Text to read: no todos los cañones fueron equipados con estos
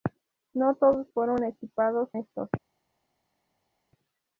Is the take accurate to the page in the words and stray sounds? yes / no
no